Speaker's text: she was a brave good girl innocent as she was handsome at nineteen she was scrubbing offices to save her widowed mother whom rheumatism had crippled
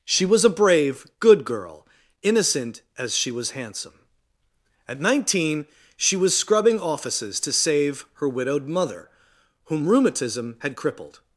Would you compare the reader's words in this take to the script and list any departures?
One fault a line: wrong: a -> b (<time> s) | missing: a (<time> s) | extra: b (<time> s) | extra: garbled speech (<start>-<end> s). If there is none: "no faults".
no faults